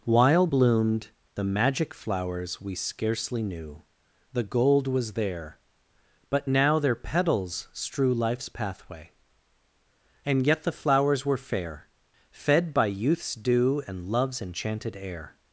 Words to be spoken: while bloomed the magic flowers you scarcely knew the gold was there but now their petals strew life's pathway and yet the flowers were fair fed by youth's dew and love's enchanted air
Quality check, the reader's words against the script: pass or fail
fail